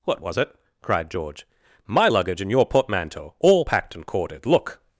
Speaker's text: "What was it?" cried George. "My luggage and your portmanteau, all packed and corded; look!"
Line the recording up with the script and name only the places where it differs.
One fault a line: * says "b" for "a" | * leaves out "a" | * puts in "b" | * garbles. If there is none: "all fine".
all fine